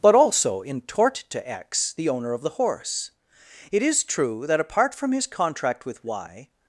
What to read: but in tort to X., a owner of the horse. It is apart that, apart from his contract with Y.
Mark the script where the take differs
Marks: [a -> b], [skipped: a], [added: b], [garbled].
but [added: also] in tort to X., [a -> the] owner of the horse. It is [apart -> true] that, apart from his contract with Y.